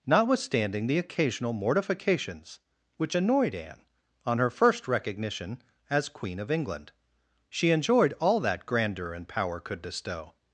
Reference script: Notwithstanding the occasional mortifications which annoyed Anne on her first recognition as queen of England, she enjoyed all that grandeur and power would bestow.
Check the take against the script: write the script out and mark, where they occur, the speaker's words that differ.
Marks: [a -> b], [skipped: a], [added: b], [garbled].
Notwithstanding the occasional mortifications which annoyed Anne on her first recognition as queen of England, she enjoyed all that grandeur and power [would -> could] bestow.